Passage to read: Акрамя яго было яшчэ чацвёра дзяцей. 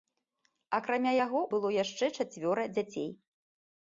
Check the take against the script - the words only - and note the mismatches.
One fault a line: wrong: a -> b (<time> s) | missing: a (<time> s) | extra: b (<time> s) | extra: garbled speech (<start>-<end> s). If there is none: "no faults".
no faults